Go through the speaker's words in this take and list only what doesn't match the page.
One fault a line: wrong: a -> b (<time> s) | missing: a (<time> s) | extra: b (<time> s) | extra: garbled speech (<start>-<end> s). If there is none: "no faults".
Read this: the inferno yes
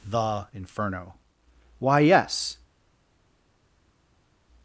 extra: why (1.8 s)